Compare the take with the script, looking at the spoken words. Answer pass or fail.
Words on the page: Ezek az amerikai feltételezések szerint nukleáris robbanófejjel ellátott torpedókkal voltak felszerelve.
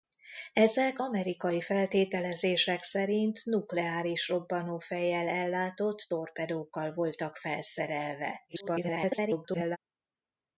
fail